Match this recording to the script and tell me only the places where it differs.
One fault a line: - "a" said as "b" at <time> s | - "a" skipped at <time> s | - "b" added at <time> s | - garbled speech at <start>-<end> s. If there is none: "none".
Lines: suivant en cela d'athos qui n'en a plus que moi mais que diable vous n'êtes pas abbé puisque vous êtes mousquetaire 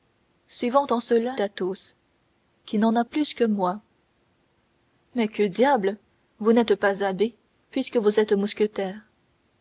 none